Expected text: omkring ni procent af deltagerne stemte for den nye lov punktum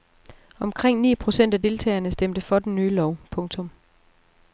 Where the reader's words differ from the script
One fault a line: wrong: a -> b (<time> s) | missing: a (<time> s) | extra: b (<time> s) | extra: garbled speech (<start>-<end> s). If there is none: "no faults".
no faults